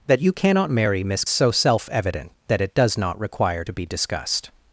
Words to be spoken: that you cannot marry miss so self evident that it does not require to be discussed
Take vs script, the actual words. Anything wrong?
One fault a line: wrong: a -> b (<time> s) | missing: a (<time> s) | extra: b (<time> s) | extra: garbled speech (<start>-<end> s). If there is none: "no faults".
no faults